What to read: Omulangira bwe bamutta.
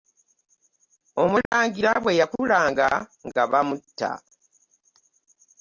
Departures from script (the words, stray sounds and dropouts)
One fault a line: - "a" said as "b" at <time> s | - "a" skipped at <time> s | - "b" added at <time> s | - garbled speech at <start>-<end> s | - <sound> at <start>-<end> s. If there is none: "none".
- dropout at 1.5-1.5 s
- "yakulanga nga" added at 2.2 s